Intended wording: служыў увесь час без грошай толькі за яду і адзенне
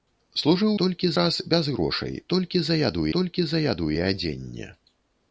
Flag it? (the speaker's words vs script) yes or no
yes